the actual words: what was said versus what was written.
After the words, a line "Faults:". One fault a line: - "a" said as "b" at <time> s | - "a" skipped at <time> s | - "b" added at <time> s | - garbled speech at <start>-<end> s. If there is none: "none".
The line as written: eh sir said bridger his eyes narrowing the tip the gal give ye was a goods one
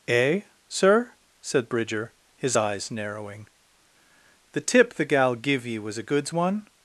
eh sir said bridger his eyes narrowing the tip the gal give ye was a goods one
Faults:
none